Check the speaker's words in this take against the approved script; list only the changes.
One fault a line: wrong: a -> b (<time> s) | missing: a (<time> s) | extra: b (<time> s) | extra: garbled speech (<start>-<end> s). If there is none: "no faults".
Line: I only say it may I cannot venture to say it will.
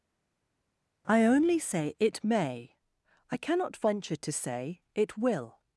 no faults